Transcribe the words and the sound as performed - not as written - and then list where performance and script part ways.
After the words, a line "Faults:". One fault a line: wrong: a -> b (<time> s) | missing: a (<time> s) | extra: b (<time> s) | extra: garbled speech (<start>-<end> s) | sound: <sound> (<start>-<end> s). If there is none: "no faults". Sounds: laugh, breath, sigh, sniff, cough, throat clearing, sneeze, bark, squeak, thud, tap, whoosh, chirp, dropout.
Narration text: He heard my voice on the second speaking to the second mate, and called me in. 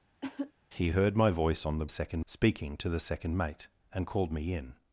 He heard my voice on the second speaking to the second mate, and called me in.
Faults:
sound: cough (0.2-0.5 s)